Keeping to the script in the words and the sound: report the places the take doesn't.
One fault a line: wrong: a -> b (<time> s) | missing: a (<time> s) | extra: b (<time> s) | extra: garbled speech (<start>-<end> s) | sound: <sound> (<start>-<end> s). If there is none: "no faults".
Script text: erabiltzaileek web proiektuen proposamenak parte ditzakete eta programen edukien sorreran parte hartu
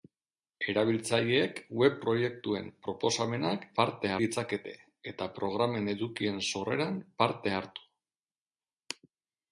no faults